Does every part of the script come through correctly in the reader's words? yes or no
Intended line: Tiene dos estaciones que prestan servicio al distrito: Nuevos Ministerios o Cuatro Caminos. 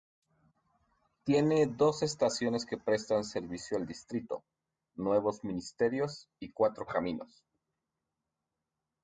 no